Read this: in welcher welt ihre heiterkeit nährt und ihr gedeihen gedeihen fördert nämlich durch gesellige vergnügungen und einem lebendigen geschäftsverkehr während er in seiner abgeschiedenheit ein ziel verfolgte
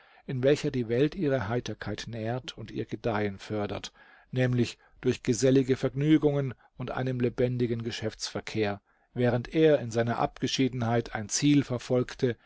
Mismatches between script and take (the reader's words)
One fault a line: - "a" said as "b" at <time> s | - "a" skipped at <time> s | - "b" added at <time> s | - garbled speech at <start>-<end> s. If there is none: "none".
- "die" added at 0.7 s
- "gedeihen" skipped at 3.4 s